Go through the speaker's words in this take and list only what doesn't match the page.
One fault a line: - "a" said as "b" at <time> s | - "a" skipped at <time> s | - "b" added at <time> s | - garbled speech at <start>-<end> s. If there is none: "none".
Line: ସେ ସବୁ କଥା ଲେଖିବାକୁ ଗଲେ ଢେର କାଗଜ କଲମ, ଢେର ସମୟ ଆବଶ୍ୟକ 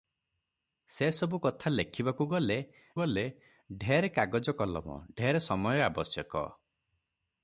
- "ଗଲେ" added at 2.9 s